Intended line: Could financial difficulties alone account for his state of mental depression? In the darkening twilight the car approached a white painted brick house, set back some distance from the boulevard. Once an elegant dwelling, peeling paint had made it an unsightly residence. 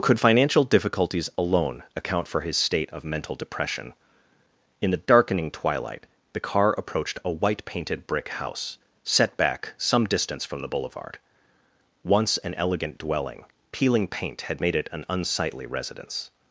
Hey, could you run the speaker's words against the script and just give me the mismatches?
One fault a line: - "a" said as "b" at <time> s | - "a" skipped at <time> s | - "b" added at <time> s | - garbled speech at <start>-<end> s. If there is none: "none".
none